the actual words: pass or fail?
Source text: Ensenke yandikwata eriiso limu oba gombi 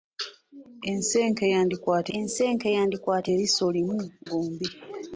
fail